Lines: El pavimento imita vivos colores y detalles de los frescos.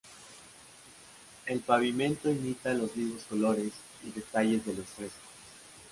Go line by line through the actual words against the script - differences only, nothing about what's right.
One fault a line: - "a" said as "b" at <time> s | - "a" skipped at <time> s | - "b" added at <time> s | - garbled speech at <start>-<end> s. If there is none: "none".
- "los" added at 2.7 s